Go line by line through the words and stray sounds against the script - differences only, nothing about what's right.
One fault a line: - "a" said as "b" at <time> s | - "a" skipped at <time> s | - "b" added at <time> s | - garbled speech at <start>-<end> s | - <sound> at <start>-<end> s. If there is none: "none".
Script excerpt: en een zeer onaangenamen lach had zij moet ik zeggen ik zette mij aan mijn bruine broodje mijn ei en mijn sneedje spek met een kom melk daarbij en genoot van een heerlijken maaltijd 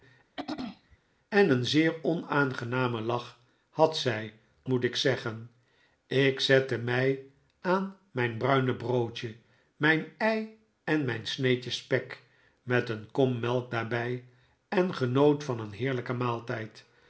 - throat clearing at 0.4-1.0 s